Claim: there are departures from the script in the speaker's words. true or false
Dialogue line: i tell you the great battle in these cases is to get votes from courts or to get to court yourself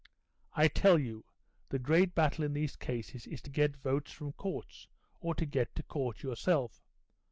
false